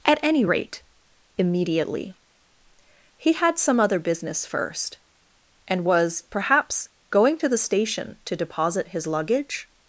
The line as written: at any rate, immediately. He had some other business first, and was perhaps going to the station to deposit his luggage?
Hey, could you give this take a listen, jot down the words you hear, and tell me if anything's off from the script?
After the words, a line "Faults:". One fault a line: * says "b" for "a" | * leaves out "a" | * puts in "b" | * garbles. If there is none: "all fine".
at any rate, immediately. He had some other business first, and was perhaps going to the station to deposit his luggage?
Faults:
all fine